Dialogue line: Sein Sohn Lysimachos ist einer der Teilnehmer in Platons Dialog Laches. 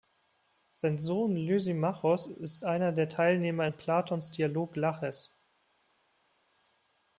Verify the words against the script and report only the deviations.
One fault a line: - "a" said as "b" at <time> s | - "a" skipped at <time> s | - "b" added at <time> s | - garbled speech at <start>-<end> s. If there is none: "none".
none